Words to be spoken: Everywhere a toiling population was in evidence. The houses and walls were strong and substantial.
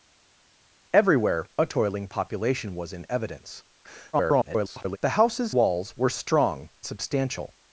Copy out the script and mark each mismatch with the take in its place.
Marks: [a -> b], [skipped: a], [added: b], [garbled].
Everywhere a toiling population was in evidence. [garbled] The houses [skipped: and] walls were strong [skipped: and] substantial.